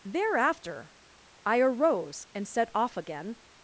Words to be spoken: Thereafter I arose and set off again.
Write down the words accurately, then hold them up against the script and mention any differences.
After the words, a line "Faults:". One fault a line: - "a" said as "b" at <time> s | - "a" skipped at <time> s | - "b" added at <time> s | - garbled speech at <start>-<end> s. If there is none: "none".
Thereafter I arose and set off again.
Faults:
none